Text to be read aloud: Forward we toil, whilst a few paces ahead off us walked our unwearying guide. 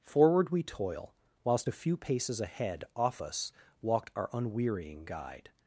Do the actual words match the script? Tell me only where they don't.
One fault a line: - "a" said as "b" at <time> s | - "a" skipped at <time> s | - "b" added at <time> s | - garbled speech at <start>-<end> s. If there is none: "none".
none